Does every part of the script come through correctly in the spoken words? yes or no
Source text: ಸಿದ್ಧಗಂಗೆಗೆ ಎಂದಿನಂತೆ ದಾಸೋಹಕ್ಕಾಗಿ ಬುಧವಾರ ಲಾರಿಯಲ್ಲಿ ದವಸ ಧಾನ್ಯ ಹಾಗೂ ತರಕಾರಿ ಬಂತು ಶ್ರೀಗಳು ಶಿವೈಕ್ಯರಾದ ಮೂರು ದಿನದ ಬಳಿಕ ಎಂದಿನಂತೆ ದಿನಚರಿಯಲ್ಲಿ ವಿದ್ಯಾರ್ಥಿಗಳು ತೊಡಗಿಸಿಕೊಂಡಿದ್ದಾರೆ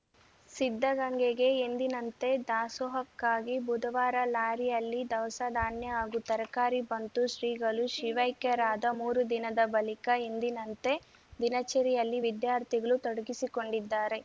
yes